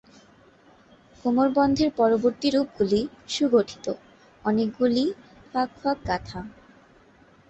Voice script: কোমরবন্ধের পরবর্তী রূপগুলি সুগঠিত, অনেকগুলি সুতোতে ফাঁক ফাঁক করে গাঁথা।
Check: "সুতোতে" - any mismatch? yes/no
yes